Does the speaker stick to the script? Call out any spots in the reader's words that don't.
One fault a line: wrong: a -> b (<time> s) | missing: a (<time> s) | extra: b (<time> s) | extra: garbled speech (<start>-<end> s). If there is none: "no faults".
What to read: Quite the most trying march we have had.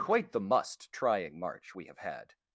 wrong: most -> must (0.4 s)